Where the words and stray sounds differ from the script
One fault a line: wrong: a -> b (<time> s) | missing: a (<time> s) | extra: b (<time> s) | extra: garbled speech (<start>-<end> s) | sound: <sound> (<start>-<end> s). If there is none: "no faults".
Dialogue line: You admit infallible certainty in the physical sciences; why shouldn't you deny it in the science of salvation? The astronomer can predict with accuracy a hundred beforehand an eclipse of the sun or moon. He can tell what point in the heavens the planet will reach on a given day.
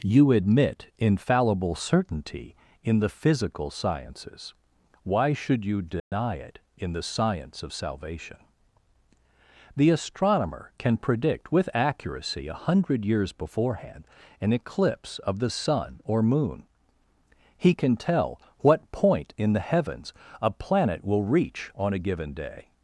wrong: shouldn't -> should (5.3 s)
sound: dropout (6.0-6.1 s)
extra: years (13.0 s)
wrong: the -> a (20.4 s)